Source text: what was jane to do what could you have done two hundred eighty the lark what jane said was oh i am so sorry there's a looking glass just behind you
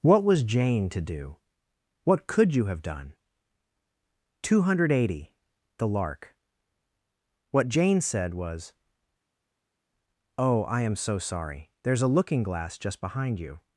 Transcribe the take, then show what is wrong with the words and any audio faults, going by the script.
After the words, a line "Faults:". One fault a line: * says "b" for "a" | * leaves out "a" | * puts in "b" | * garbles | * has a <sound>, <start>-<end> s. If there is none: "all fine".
what was jane to do what could you have done two hundred eighty the lark what jane said was oh i am so sorry there's a looking glass just behind you
Faults:
all fine